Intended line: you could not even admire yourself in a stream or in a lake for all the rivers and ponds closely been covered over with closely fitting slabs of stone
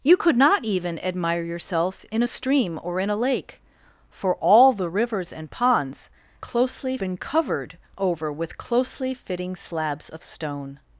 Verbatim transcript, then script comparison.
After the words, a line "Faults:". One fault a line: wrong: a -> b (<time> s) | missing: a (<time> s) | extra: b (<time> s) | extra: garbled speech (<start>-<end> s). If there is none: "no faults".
you could not even admire yourself in a stream or in a lake for all the rivers and ponds closely been covered over with closely fitting slabs of stone
Faults:
no faults